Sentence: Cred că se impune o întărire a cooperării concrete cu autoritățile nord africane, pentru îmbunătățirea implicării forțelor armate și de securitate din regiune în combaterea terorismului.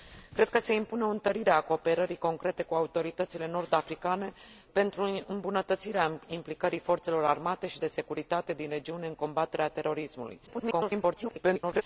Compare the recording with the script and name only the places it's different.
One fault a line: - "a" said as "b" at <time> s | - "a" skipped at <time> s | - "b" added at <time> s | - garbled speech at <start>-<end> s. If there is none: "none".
- garbled speech at 10.5-11.8 s